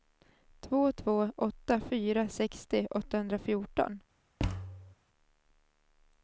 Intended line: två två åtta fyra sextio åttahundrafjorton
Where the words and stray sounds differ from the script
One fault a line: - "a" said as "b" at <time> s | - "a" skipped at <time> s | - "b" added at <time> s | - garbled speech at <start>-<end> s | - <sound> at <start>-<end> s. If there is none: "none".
- thud at 4.4-5.0 s